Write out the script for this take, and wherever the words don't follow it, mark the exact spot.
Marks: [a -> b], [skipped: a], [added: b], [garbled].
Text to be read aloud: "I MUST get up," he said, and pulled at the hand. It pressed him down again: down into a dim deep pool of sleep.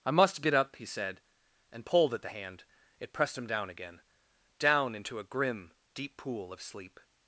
"I MUST get up," he said, and pulled at the hand. It pressed him down again: down into a [dim -> grim] deep pool of sleep.